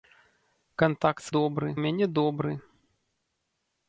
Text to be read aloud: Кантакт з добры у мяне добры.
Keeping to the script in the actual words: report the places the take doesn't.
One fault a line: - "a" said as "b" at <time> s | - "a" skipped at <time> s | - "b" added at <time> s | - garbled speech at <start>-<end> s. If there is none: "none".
none